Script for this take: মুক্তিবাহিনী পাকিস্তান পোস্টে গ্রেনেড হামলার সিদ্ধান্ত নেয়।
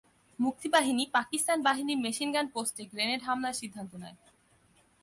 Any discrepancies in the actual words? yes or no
yes